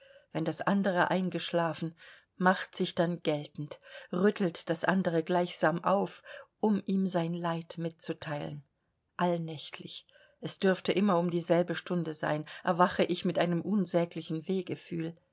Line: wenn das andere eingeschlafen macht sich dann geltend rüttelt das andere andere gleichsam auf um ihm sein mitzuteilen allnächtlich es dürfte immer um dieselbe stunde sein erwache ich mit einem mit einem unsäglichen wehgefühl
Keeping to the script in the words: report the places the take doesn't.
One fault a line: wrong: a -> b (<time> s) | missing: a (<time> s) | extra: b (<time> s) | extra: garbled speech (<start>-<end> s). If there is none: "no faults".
missing: andere (5.2 s)
extra: leid (7.3 s)
missing: mit einem (13.6 s)